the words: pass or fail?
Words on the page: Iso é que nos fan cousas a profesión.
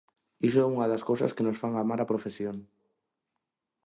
fail